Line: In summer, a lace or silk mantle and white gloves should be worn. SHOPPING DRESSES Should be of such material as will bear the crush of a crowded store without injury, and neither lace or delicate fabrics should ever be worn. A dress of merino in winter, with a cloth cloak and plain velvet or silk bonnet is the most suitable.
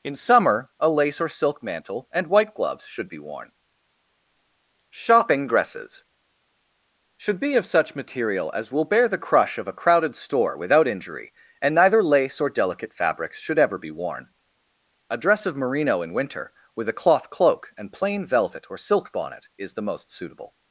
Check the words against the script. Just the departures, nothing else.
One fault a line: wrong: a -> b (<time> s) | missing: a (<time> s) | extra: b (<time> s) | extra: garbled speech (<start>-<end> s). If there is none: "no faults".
no faults